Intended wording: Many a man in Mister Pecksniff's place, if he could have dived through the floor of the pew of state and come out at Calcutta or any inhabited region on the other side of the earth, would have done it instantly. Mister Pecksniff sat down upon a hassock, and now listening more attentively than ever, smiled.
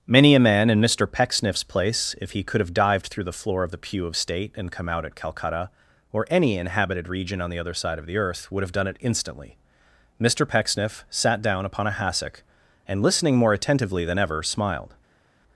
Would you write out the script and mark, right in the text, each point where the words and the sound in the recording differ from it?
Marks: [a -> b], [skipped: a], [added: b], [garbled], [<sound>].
Many a man in Mister Pecksniff's place, if he could have dived through the floor of the pew of state and come out at Calcutta or any inhabited region on the other side of the earth, would have done it instantly. Mister Pecksniff sat down upon a hassock, and [skipped: now] listening more attentively than ever, smiled.